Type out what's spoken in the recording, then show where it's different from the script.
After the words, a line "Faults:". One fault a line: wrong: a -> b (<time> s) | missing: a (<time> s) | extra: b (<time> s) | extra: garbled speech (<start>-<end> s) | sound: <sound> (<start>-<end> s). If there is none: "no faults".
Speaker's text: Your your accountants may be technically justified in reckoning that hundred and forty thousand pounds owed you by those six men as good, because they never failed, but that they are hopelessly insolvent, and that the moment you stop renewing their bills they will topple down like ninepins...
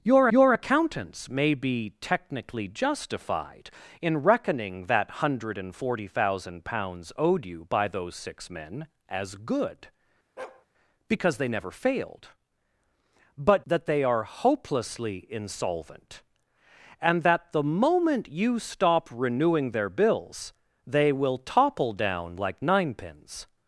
Your your accountants may be technically justified in reckoning that hundred and forty thousand pounds owed you by those six men as good, because they never failed, but that they are hopelessly insolvent, and that the moment you stop renewing their bills they will topple down like ninepins...
Faults:
sound: bark (10.4-10.7 s)